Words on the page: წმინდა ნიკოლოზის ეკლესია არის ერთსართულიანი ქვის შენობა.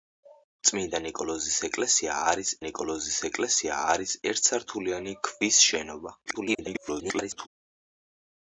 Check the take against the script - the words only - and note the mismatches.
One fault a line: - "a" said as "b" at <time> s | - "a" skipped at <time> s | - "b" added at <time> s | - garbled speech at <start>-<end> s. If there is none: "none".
- "ნიკოლოზის ეკლესია არის" added at 2.6 s
- garbled speech at 6.3-7.5 s